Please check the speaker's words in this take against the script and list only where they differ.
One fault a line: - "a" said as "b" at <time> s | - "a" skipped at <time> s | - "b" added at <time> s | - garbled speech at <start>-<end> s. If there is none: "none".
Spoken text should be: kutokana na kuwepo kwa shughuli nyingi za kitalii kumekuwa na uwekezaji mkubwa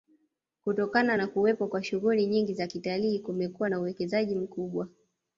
none